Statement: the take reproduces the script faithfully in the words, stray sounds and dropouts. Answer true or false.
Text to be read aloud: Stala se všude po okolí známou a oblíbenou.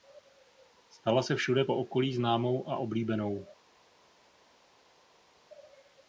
true